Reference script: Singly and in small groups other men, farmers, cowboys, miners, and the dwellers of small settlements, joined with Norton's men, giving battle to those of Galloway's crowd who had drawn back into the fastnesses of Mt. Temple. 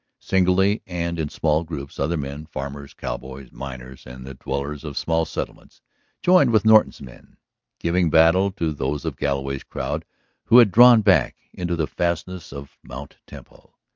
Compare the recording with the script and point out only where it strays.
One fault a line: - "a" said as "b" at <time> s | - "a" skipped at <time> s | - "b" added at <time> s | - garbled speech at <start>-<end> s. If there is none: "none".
none